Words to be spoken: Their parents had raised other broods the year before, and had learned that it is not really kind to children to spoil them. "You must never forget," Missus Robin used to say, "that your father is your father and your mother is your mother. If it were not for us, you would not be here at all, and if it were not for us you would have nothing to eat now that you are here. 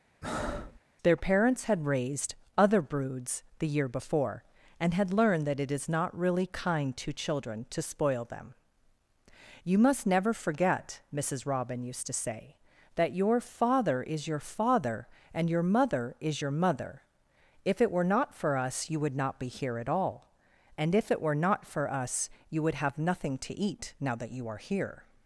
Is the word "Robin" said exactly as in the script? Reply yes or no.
yes